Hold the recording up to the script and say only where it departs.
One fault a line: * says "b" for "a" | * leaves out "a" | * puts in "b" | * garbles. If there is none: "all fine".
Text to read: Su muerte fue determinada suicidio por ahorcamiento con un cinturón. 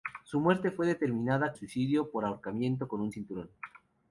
all fine